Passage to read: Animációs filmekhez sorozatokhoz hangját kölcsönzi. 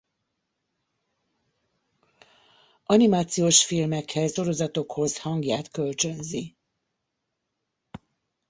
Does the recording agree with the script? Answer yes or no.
yes